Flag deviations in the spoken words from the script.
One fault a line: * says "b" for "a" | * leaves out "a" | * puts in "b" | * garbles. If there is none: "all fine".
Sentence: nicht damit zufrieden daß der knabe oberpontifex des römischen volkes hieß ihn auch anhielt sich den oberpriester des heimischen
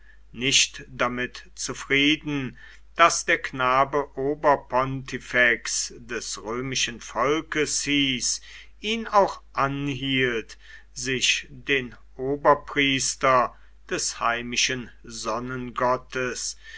all fine